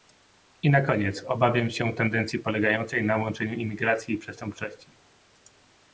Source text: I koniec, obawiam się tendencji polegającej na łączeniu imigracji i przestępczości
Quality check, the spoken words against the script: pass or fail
fail